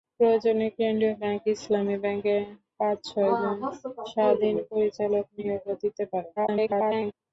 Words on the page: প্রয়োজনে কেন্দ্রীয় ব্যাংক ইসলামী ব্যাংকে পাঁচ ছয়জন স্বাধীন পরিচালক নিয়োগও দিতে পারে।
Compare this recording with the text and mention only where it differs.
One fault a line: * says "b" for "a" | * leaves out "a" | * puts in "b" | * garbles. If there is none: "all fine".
* garbles